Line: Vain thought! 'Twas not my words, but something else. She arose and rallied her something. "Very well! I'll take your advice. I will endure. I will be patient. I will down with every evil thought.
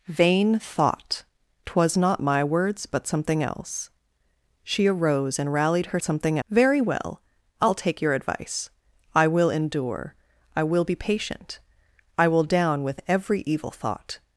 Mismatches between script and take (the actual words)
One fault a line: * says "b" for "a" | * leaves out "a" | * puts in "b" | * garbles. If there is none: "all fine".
all fine